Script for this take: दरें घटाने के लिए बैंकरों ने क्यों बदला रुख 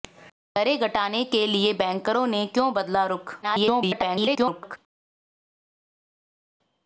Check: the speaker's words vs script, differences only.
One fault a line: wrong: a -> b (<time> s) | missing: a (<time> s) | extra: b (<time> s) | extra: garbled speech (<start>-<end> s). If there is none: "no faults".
extra: garbled speech (3.4-4.8 s)